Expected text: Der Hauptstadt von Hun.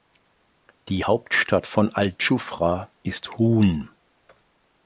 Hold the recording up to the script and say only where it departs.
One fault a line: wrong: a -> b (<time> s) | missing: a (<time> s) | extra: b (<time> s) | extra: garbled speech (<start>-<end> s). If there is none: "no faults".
wrong: Der -> Die (0.9 s)
extra: al Dschufra ist (1.9 s)